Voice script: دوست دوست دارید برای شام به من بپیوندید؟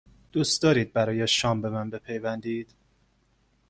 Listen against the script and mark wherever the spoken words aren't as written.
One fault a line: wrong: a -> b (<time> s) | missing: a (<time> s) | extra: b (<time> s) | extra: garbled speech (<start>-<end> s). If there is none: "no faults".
missing: دوست (0.6 s)